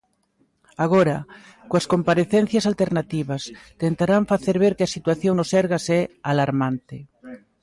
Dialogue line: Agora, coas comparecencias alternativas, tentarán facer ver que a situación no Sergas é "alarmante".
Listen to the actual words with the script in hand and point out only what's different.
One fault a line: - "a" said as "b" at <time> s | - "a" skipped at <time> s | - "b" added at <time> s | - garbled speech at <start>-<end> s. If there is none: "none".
none